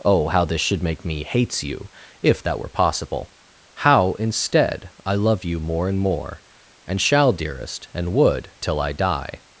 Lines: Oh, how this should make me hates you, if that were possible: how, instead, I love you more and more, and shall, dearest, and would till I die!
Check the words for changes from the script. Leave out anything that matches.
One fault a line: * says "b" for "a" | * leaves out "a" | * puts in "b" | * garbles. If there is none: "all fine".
all fine